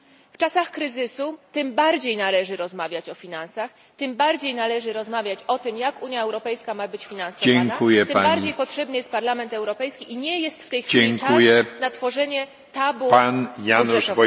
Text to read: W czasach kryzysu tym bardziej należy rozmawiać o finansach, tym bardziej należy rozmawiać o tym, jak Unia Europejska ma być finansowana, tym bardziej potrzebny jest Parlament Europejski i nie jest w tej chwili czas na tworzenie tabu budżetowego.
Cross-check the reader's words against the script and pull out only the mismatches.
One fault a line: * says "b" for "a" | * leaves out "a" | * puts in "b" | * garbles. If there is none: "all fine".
all fine